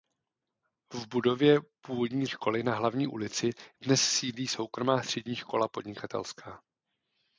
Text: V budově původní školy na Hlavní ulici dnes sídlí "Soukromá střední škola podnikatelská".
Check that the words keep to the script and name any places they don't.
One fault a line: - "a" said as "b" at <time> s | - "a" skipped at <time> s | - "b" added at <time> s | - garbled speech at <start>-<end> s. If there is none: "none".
none